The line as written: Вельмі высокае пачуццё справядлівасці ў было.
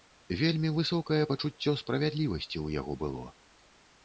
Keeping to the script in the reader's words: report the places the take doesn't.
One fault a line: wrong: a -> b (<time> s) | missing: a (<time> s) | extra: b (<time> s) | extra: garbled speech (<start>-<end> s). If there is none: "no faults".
extra: яго (2.8 s)